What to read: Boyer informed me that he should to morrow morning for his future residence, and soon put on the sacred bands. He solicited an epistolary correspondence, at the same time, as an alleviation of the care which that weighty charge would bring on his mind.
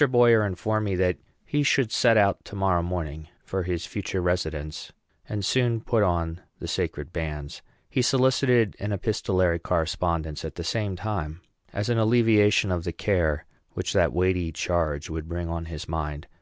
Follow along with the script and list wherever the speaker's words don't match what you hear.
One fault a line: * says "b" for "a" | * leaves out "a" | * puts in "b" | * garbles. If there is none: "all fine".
* puts in "set out"